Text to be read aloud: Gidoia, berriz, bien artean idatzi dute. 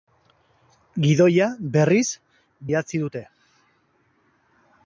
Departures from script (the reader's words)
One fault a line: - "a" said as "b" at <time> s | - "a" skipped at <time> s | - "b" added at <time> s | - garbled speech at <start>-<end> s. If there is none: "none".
- "bien artean" skipped at 2.1 s